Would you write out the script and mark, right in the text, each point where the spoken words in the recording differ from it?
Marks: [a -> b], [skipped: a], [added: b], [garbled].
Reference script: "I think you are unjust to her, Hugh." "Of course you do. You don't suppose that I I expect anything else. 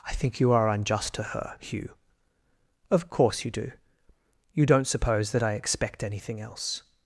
"I think you are unjust to her, Hugh." "Of course you do. You don't suppose that I [skipped: I] expect anything else.